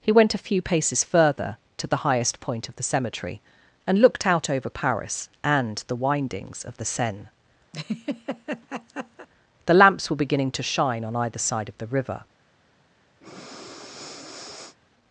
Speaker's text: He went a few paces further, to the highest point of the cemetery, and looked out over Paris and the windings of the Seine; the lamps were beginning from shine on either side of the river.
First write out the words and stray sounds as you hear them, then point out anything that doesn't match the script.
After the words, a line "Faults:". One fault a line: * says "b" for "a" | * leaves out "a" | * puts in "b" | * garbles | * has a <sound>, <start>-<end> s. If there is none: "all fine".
He went a few paces further, to the highest point of the cemetery, and looked out over Paris and the windings of the Seine; the lamps were beginning to shine on either side of the river.
Faults:
* has a laugh, 7.7-9.3 s
* says "to" for "from"
* has a breath, 13.2-14.8 s